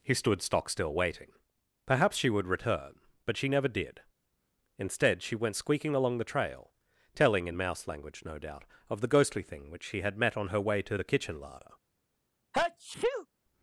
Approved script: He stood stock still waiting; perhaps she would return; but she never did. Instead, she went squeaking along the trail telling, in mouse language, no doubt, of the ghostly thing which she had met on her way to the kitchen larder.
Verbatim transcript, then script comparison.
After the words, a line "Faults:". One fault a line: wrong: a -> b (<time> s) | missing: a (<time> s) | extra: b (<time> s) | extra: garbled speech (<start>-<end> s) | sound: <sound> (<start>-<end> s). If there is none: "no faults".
He stood stock still waiting; perhaps she would return; but she never did. Instead, she went squeaking along the trail telling, in mouse language, no doubt, of the ghostly thing which she had met on her way to the kitchen larder.
Faults:
sound: sneeze (12.5-13.3 s)